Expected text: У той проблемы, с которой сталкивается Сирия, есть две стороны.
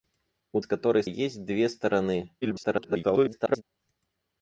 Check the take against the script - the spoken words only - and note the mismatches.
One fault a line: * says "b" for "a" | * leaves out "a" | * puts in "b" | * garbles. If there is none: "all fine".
* leaves out "той проблемы"
* leaves out "сталкивается Сирия"
* garbles